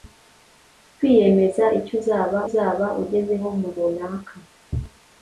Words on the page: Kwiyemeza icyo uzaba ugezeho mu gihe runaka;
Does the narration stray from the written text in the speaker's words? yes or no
yes